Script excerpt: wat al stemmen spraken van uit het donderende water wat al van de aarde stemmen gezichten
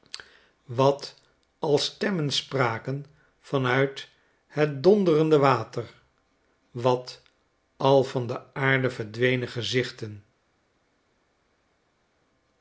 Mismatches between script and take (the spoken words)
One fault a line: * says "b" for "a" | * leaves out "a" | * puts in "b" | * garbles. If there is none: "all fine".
* says "verdwenen" for "stemmen"